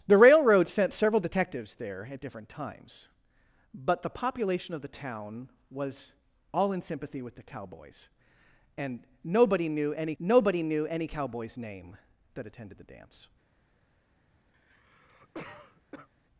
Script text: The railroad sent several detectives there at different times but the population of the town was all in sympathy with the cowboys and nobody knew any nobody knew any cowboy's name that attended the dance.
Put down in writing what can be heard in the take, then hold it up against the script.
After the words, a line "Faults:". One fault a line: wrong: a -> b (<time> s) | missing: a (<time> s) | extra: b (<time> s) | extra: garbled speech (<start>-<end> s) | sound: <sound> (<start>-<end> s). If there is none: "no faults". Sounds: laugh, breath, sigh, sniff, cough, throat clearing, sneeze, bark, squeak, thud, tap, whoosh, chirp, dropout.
The railroad sent several detectives there at different times but the population of the town was all in sympathy with the cowboys and nobody knew any nobody knew any cowboy's name that attended the dance.
Faults:
sound: cough (14.5-16.1 s)